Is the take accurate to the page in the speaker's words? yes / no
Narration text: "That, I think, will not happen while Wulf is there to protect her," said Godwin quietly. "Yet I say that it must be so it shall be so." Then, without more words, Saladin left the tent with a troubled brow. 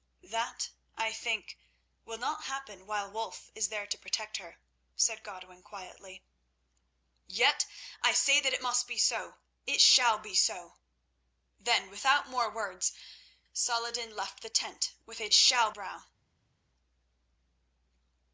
no